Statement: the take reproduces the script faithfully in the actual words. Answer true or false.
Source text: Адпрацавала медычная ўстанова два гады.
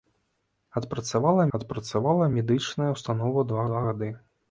false